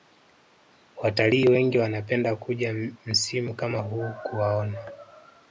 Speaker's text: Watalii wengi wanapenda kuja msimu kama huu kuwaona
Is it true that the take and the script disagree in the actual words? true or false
false